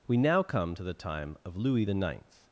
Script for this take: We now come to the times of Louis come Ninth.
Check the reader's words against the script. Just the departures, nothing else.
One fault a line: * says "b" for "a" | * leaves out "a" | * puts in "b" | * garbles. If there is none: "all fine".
* says "time" for "times"
* says "the" for "come"